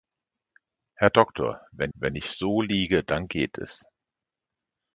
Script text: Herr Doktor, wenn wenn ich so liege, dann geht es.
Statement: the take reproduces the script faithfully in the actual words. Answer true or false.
true